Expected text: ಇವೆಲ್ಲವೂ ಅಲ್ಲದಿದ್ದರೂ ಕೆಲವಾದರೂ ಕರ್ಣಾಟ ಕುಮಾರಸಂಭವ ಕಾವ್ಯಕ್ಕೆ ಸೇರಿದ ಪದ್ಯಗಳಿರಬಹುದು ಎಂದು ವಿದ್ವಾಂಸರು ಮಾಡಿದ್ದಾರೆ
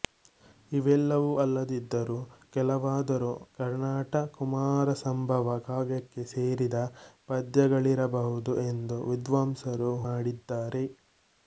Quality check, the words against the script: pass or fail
pass